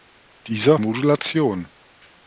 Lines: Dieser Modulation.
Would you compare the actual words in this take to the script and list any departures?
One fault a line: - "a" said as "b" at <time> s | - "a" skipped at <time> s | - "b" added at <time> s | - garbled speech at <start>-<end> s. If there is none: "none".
none